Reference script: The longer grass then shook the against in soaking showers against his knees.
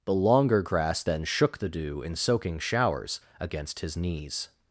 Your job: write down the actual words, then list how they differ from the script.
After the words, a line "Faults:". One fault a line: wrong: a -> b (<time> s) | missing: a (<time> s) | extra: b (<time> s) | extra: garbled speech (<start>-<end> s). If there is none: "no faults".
The longer grass then shook the dew in soaking showers against his knees.
Faults:
wrong: against -> dew (1.7 s)